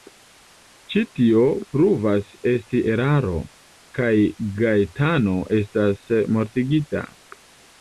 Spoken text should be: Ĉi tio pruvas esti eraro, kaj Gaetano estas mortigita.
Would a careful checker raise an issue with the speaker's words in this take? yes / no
no